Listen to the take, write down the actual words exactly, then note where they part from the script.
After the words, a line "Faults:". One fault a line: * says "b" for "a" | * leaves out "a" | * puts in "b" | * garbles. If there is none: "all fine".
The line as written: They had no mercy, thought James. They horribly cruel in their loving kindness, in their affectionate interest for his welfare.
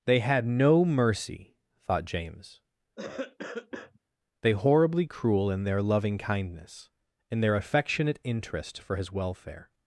They had no mercy, thought James. They horribly cruel in their loving kindness, in their affectionate interest for his welfare.
Faults:
all fine